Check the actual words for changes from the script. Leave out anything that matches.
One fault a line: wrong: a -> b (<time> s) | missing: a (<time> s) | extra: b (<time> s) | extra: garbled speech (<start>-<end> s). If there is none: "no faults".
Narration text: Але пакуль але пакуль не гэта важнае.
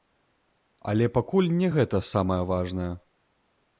missing: але пакуль (1.5 s)
extra: самае (2.1 s)